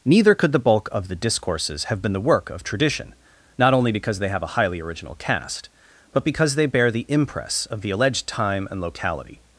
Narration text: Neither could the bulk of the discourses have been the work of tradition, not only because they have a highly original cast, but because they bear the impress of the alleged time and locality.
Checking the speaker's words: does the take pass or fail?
pass